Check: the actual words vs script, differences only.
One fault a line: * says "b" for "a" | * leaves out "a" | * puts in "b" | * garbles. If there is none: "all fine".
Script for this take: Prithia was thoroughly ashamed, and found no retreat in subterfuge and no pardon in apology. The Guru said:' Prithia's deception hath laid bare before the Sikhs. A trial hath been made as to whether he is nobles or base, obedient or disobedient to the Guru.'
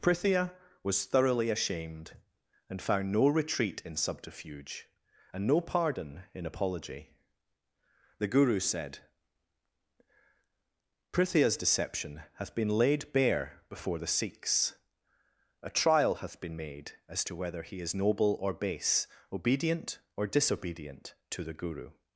* puts in "been"
* says "noble" for "nobles"